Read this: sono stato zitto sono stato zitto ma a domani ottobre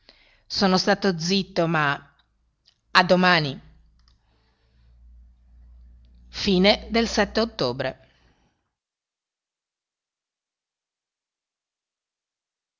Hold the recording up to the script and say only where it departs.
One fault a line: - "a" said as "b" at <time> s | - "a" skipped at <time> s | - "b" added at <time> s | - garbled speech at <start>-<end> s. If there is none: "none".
- "sono stato zitto" skipped at 1.7 s